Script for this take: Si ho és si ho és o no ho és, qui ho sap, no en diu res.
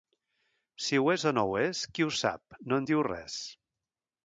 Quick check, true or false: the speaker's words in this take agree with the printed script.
false